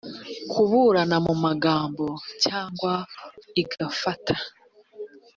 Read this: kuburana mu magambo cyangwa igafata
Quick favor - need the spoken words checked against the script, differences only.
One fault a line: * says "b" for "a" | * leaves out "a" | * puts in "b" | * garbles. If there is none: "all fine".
all fine